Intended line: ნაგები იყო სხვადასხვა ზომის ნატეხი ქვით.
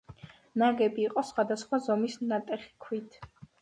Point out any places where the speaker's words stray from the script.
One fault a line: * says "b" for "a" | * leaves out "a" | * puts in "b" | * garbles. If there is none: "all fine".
all fine